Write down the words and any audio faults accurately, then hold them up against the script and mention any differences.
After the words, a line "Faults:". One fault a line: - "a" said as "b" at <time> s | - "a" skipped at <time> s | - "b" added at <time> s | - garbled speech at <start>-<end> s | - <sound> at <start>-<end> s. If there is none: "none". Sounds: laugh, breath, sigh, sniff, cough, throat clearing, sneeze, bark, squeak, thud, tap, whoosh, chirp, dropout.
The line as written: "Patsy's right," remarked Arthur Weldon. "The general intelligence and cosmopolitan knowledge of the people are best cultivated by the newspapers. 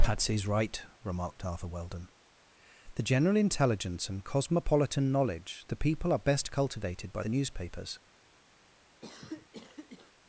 "Patsy's right," remarked Arthur Weldon. "The general intelligence and cosmopolitan knowledge the people are best cultivated by the newspapers.
Faults:
- "of" skipped at 5.7 s
- cough at 9.0-10.1 s